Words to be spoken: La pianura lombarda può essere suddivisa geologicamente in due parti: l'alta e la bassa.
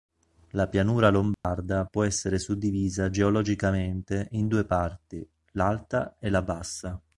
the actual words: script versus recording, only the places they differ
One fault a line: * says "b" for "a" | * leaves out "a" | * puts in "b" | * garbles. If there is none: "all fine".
all fine